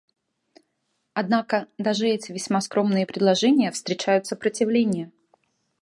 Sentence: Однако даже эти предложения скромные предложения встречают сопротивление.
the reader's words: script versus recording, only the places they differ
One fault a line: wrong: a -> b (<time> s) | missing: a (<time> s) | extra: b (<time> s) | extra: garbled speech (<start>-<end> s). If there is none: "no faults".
wrong: предложения -> весьма (2.3 s)